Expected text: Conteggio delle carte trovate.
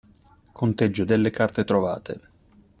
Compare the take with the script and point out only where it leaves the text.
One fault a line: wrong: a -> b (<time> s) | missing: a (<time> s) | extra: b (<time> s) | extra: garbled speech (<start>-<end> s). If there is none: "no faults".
no faults